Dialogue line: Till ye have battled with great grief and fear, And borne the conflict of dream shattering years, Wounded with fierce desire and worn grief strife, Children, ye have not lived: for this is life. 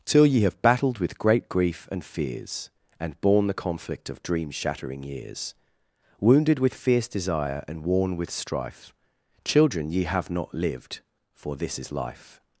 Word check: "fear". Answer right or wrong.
wrong